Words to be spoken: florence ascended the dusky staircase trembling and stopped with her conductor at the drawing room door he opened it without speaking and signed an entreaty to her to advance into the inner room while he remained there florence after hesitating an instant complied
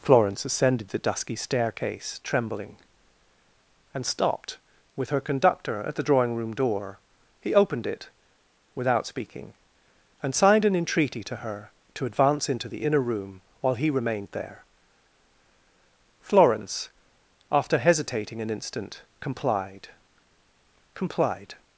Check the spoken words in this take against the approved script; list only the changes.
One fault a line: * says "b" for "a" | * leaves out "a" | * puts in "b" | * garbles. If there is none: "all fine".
* puts in "complied"